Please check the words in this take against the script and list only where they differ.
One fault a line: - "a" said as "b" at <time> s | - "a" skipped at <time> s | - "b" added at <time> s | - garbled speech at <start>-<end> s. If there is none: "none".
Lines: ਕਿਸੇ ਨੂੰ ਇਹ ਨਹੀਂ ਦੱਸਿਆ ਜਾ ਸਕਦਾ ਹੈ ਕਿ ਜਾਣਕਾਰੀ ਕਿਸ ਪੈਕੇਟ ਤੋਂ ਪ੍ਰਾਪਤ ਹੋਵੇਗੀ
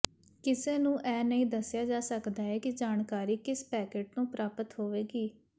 none